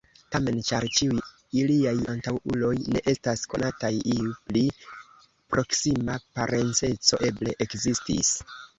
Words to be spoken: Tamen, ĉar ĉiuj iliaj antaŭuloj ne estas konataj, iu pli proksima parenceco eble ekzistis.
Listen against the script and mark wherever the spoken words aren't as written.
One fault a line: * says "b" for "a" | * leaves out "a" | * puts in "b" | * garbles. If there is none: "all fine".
all fine